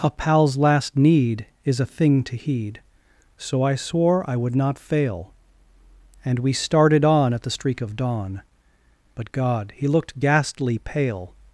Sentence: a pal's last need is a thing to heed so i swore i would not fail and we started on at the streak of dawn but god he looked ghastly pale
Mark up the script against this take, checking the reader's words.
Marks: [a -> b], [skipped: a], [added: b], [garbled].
a pal's last need is a thing to heed so i swore i would not fail and we started on at the streak of dawn but god he looked ghastly pale